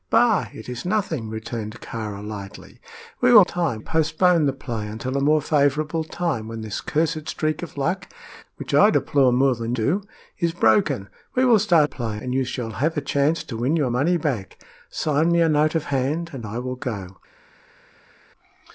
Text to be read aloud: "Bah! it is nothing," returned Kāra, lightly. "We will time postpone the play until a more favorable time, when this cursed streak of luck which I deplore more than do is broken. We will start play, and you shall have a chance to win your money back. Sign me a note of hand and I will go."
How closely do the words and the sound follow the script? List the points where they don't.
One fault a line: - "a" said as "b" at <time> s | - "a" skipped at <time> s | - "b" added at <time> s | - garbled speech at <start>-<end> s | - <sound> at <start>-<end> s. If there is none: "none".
none